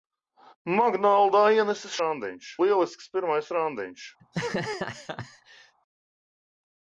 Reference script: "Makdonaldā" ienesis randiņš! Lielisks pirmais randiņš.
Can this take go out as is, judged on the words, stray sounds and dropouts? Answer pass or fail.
fail